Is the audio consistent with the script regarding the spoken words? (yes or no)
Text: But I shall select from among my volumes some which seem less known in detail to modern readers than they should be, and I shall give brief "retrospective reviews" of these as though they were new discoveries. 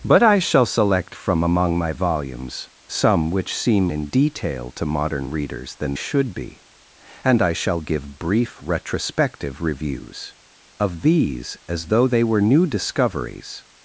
no